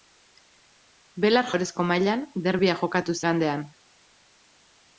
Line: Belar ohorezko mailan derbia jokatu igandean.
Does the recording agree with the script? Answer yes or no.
yes